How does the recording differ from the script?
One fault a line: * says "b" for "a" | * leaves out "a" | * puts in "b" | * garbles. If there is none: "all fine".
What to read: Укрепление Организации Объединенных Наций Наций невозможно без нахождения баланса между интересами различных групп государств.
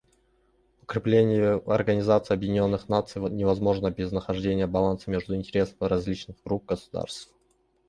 * leaves out "Наций"